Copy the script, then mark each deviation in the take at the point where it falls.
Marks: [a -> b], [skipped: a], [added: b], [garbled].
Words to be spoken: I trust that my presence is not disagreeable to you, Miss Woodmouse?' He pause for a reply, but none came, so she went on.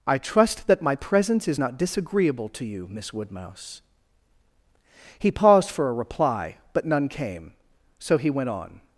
I trust that my presence is not disagreeable to you, Miss Woodmouse?' He [pause -> paused] for a reply, but none came, so [she -> he] went on.